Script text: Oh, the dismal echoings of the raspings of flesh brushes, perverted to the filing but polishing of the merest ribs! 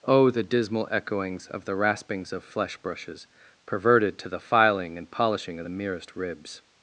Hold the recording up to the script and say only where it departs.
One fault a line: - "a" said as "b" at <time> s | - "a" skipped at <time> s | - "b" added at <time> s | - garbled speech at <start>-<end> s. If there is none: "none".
- "but" said as "and" at 5.0 s